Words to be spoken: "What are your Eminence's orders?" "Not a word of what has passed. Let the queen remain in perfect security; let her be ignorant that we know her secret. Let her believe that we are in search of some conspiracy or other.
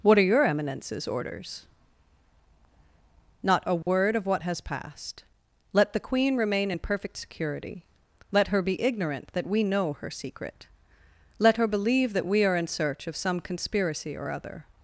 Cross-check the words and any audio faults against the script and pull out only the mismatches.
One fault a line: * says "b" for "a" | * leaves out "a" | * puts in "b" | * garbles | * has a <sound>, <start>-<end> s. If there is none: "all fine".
* has a dropout, 3.8-3.9 s